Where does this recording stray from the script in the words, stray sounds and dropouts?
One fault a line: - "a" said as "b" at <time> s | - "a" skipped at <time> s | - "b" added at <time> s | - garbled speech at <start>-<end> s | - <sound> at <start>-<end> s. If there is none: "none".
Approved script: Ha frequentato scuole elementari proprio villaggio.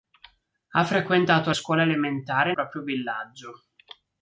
none